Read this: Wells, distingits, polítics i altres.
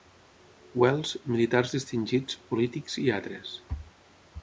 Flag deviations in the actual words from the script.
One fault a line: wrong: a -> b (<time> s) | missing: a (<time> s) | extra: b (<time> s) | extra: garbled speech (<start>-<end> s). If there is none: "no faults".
extra: militars (1.4 s)